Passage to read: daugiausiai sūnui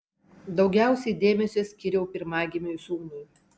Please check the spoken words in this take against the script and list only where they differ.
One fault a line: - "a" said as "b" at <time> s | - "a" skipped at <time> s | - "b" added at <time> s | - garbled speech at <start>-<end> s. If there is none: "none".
- "dėmesio skyriau pirmagimiui" added at 1.2 s